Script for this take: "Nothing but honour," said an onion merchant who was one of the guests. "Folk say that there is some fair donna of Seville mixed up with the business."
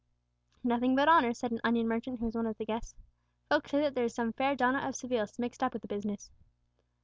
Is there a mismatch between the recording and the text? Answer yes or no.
no